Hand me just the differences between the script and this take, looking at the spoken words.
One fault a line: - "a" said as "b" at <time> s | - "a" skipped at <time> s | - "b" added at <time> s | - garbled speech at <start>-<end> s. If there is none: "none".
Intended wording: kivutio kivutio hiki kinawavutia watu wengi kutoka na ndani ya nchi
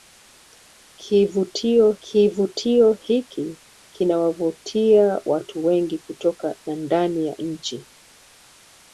none